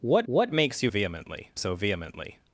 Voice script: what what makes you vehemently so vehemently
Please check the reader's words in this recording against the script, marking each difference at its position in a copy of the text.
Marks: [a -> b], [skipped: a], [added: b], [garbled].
what what makes you vehemently so vehemently